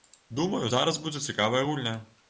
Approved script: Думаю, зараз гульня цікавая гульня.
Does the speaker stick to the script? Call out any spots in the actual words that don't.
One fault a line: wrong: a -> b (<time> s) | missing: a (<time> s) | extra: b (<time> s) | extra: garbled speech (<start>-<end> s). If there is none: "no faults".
wrong: гульня -> будзе (1.0 s)